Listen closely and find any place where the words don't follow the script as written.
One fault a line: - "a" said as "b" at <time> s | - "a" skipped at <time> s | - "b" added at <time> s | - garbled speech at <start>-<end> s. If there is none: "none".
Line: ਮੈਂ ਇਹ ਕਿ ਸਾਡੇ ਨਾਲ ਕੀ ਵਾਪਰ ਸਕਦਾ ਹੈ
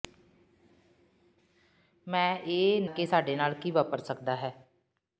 none